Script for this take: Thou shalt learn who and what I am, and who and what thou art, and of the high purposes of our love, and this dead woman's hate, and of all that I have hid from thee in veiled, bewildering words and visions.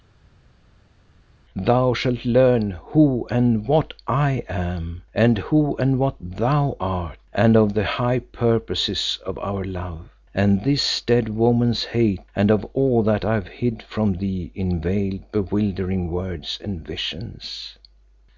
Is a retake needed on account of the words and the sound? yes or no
no